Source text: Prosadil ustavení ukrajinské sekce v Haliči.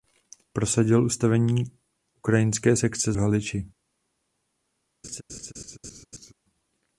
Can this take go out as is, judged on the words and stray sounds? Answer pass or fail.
fail